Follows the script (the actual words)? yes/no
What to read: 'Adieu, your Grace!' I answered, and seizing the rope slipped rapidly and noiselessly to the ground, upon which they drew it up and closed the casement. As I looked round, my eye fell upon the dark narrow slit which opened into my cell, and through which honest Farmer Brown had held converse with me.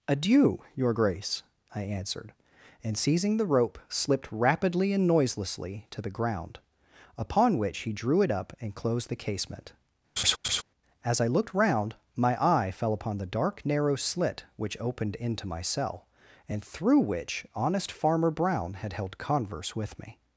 no